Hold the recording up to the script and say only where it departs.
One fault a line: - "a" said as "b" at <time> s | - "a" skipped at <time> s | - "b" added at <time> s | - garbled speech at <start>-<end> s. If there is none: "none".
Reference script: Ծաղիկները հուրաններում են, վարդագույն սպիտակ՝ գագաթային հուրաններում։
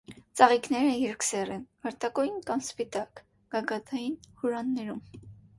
- "հուրաններում" said as "երկսեռ" at 1.0 s
- "կամ" added at 2.5 s